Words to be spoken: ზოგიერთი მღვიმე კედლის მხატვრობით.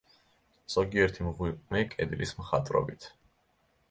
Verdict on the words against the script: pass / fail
pass